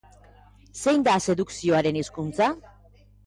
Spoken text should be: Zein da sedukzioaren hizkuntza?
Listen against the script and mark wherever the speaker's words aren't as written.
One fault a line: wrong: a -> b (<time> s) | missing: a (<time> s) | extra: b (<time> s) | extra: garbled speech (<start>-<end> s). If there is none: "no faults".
no faults